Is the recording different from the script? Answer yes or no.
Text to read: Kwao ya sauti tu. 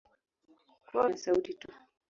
no